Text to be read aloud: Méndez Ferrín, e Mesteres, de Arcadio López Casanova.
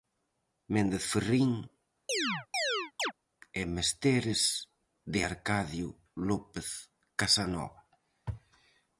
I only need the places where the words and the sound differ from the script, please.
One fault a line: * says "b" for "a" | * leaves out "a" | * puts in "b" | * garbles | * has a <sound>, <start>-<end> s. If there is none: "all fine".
* has a chirp, 2.1-3.1 s